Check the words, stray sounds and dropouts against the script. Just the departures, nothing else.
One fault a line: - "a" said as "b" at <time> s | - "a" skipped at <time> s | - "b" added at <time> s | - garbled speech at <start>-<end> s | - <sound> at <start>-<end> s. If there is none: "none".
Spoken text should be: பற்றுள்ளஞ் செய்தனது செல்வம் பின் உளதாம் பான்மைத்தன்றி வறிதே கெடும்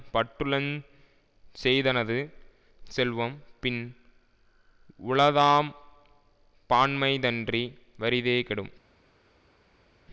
none